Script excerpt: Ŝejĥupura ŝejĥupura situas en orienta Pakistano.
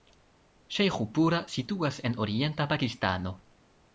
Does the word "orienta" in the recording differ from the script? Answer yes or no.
no